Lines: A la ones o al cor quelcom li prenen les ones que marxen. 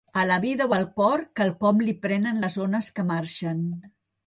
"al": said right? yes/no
yes